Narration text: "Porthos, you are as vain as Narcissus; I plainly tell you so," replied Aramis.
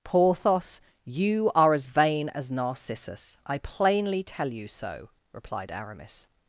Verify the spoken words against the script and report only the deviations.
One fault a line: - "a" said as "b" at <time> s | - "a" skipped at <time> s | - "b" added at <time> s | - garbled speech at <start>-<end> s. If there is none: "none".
none